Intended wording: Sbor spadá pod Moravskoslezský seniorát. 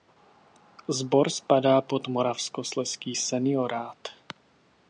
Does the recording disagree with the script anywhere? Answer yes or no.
no